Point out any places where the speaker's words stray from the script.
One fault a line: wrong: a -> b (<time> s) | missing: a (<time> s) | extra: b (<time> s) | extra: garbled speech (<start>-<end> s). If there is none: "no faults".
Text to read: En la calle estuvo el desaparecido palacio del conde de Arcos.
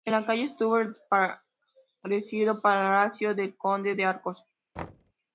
no faults